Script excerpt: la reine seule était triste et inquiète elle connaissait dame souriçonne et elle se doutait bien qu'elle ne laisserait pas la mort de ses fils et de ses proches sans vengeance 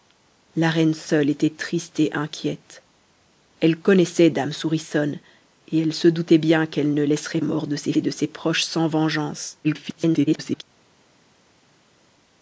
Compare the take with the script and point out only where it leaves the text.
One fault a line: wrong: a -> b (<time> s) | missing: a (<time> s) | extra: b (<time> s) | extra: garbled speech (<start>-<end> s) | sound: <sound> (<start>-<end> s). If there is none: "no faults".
missing: pas la (7.4 s)
missing: fils (7.9 s)
extra: garbled speech (9.6-10.6 s)